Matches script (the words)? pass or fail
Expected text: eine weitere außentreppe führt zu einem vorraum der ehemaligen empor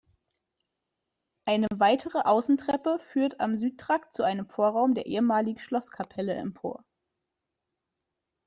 fail